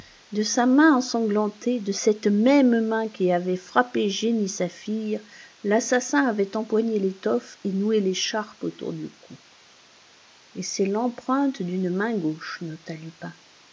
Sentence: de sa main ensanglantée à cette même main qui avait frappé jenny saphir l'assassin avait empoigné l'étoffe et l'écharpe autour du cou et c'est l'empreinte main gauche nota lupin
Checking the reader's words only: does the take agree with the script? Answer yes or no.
no